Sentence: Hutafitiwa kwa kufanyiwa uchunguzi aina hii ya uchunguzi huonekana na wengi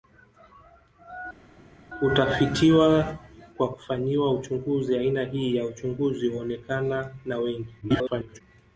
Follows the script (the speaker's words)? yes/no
no